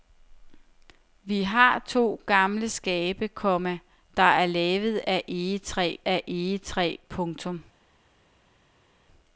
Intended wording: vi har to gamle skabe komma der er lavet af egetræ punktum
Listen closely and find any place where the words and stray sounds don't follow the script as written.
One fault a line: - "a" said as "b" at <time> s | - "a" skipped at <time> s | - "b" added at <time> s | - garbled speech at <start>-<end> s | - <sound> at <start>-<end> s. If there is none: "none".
- "af egetræ" added at 6.1 s